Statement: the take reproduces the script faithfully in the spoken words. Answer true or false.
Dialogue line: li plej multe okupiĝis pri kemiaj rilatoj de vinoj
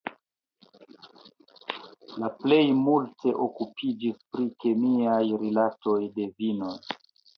true